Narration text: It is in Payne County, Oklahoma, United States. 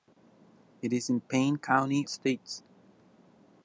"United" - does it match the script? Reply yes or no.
no